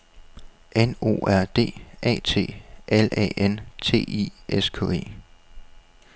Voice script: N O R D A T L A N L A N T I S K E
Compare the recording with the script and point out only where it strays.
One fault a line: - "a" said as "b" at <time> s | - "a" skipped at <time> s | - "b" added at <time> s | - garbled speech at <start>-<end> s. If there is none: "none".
- "L A N" skipped at 3.6 s